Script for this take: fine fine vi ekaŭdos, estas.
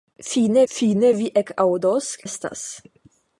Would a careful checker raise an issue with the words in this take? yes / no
no